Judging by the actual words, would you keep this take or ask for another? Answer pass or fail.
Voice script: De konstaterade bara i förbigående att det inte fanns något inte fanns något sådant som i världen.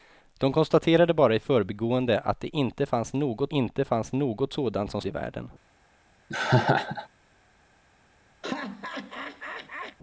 pass